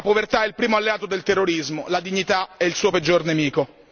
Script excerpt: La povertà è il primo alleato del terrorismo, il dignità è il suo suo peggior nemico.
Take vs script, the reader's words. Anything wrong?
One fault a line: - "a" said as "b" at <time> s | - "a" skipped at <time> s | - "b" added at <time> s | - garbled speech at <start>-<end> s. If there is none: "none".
- "il" said as "la" at 1.9 s
- "suo" skipped at 2.9 s